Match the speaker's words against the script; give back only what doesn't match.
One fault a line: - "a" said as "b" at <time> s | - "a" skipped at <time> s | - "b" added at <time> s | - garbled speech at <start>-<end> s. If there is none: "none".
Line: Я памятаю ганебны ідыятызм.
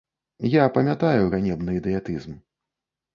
none